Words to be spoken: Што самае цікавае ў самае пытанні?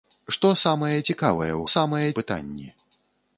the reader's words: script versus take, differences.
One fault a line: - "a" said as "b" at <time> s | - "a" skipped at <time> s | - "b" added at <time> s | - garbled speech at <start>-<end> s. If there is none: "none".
none